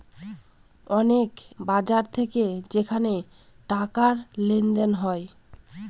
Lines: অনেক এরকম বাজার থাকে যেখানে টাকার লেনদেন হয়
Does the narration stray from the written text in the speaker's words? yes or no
yes